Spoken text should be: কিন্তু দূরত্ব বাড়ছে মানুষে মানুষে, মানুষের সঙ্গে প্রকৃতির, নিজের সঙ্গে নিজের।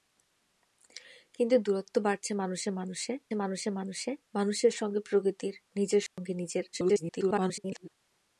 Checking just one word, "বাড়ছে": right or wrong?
right